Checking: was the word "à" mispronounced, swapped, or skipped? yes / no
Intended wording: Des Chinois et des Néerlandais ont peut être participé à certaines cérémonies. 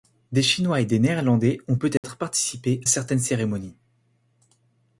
yes